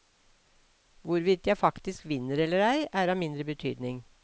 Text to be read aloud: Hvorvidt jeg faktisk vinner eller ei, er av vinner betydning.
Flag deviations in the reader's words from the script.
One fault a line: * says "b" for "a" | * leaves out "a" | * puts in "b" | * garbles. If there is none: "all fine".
* says "mindre" for "vinner"